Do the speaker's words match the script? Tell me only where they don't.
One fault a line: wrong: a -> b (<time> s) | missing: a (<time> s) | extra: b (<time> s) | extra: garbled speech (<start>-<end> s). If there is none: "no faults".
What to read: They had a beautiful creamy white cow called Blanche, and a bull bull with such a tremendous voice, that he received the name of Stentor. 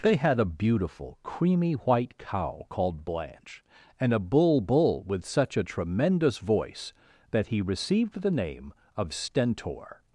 no faults